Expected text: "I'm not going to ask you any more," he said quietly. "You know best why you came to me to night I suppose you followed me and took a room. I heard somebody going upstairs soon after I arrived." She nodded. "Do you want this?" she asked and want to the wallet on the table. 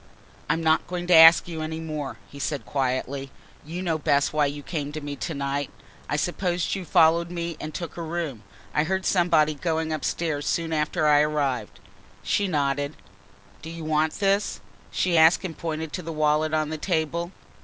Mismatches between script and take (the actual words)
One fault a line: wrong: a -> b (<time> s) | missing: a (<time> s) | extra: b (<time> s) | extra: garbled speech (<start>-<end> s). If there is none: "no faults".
wrong: want -> pointed (15.6 s)